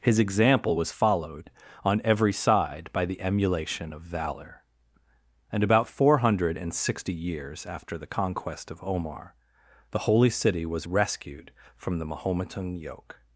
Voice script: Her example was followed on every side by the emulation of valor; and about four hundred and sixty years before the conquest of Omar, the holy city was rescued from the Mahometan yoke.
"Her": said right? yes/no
no